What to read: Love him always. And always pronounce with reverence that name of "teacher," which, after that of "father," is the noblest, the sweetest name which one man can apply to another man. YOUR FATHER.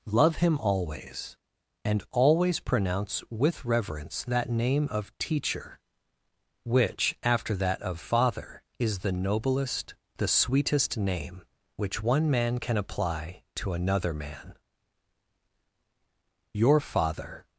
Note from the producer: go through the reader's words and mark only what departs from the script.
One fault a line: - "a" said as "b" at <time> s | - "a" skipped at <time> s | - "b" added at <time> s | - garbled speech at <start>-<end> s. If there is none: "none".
none